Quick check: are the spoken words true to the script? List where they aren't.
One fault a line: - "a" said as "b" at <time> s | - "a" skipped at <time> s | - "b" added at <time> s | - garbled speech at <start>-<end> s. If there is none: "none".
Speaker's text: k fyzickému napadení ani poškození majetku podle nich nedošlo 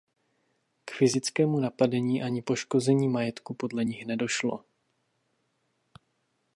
none